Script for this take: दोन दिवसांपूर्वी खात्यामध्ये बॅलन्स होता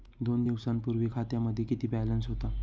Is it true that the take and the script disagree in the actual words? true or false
true